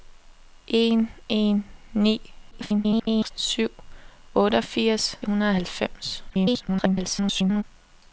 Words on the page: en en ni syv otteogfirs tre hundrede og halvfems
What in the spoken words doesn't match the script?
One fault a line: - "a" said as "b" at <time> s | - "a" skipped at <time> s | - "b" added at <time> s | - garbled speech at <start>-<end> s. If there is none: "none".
- garbled speech at 2.5-3.3 s
- "tre" skipped at 5.2 s
- garbled speech at 6.3-7.6 s